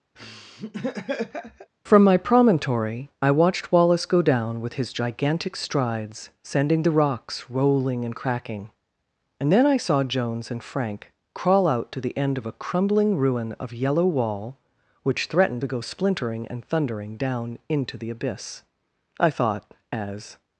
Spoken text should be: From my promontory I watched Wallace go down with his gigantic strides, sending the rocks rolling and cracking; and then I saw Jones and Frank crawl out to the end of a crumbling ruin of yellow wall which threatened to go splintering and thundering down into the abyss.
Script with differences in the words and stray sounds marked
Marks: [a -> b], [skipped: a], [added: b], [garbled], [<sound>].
[laugh] From my promontory I watched Wallace go down with his gigantic strides, sending the rocks rolling and cracking; and then I saw Jones and Frank crawl out to the end of a crumbling ruin of yellow wall which threatened to go splintering and thundering down into the abyss. [added: I thought as]